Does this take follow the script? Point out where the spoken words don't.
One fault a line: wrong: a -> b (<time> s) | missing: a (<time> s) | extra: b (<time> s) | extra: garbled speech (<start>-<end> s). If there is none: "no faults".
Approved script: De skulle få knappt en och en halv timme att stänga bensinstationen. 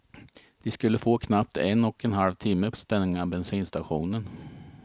no faults